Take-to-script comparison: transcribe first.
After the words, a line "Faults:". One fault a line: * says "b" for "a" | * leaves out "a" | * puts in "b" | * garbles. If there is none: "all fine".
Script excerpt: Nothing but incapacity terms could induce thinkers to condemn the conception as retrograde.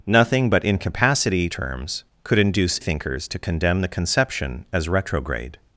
Nothing but incapacity terms could induce thinkers to condemn the conception as retrograde.
Faults:
all fine